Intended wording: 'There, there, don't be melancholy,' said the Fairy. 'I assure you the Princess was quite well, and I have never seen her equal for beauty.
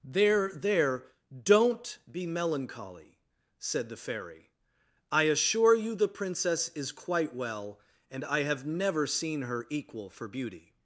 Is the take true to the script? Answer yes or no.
no